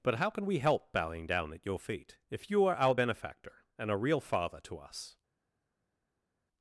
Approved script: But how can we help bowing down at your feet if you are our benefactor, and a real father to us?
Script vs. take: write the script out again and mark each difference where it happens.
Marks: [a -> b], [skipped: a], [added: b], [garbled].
But how can we help bowing down at your feet if you are our benefactor, and a real father to us?